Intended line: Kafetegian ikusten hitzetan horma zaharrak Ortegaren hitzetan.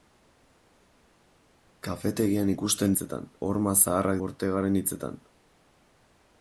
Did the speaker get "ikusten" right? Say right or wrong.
right